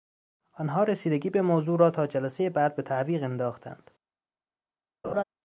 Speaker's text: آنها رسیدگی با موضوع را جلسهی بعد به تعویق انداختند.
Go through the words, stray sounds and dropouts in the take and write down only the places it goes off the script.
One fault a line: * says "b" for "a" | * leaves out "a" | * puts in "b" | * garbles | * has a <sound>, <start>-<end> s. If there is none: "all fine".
* says "به" for "با"
* puts in "تا"
* has a laugh, 5.0-5.2 s